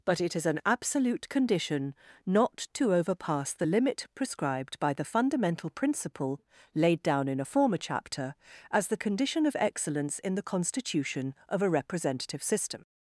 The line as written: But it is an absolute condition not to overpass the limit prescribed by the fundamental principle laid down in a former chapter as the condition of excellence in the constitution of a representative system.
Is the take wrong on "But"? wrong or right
right